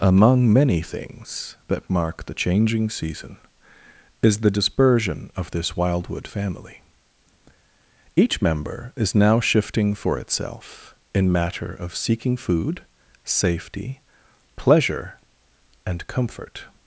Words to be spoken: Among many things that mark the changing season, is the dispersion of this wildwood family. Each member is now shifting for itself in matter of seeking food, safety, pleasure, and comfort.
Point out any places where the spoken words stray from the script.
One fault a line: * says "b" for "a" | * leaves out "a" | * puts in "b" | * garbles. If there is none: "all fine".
all fine